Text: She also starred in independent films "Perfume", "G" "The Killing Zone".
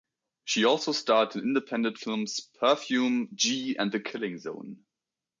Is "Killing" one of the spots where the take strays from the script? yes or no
no